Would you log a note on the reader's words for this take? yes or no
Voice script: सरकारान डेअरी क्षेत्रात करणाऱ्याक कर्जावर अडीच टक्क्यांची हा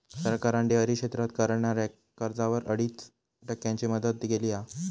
yes